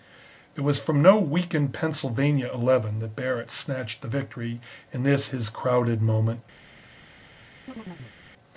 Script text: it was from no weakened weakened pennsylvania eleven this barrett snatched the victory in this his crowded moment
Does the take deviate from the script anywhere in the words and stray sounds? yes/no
yes